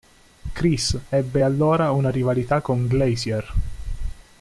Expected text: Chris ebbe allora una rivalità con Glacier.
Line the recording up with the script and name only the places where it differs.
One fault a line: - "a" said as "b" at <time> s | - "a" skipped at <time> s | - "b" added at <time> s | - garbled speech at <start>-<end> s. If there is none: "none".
none